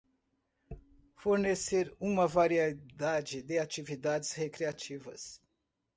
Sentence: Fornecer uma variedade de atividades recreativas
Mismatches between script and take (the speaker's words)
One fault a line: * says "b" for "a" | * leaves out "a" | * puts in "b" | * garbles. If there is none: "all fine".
all fine